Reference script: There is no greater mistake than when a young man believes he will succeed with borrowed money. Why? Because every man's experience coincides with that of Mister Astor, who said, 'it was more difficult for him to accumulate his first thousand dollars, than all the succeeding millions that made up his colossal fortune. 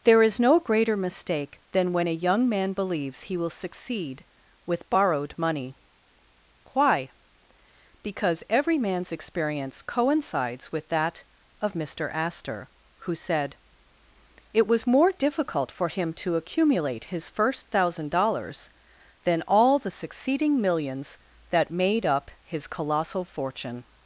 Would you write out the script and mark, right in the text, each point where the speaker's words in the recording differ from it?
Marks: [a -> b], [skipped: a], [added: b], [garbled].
There is no greater mistake than when a young man believes he will succeed with borrowed money. Why? Because every man's experience coincides with that of Mister Astor, who said, 'it was more difficult for him to accumulate his first thousand dollars, than all the succeeding millions that made up his colossal fortune.